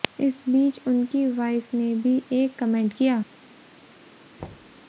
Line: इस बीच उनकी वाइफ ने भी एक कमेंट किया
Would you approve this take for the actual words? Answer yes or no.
yes